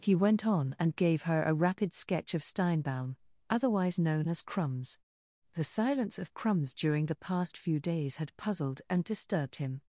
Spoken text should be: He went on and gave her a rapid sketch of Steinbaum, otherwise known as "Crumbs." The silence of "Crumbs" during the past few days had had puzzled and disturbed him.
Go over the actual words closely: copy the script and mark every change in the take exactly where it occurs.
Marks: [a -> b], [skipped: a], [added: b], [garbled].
He went on and gave her a rapid sketch of Steinbaum, otherwise known as "Crumbs." The silence of "Crumbs" during the past few days had [skipped: had] puzzled and disturbed him.